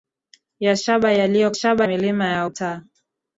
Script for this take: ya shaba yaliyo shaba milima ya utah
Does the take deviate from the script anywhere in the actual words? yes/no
no